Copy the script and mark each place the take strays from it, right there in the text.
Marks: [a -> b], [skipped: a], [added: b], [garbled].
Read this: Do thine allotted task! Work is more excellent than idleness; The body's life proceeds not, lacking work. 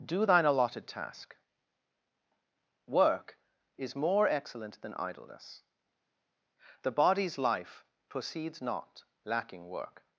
Do thine allotted task! Work is more excellent than idleness; The body's life proceeds not, lacking work.